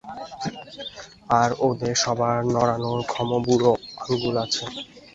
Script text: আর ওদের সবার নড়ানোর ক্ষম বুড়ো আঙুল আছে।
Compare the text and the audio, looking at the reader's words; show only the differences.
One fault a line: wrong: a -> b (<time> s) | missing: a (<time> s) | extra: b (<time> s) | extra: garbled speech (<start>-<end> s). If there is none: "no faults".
no faults